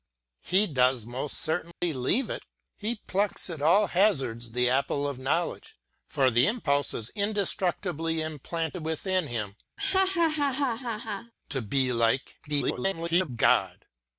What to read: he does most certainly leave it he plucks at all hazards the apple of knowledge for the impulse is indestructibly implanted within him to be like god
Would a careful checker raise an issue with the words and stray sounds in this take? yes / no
yes